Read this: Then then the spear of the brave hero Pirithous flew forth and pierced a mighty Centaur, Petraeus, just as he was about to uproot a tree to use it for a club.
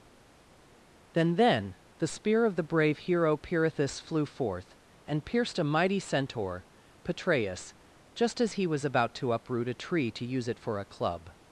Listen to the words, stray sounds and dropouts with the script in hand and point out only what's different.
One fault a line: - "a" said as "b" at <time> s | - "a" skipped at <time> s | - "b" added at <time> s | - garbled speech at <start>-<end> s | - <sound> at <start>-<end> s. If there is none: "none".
none